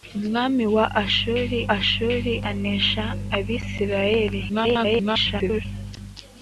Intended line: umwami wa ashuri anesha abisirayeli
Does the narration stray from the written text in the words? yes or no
yes